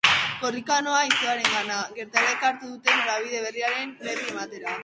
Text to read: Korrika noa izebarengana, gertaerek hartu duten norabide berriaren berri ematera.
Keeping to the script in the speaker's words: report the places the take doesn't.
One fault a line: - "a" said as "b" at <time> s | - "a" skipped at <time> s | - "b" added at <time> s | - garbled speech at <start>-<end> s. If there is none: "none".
none